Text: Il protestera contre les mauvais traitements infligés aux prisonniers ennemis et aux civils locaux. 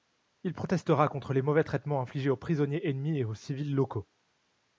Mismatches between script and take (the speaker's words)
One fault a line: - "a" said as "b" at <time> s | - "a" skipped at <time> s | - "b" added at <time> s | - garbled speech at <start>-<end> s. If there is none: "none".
none